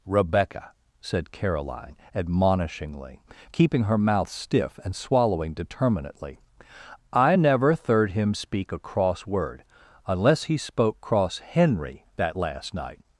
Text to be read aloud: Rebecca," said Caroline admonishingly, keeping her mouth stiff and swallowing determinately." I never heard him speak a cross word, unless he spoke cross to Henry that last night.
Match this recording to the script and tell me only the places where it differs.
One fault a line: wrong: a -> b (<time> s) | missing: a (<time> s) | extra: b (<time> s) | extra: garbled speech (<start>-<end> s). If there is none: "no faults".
wrong: heard -> third (7.7 s)
missing: to (11.4 s)